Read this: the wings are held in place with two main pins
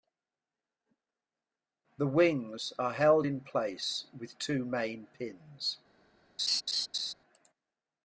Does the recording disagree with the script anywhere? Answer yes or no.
no